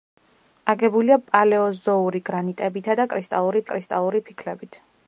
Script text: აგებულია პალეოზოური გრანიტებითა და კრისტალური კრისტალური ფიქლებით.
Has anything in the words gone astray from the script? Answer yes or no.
no